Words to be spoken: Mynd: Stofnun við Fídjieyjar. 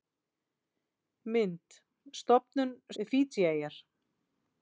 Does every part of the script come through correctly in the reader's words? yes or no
yes